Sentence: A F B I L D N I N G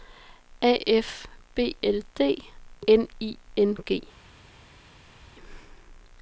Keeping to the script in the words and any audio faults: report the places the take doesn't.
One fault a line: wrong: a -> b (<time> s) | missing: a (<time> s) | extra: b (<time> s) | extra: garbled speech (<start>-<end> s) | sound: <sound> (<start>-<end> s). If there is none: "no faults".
missing: I (1.8 s)